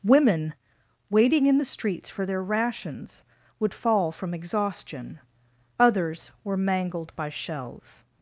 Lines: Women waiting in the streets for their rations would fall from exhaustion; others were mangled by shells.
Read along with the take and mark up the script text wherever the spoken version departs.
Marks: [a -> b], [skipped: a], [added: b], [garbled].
Women waiting in the streets for their rations would fall from exhaustion; others were mangled by shells.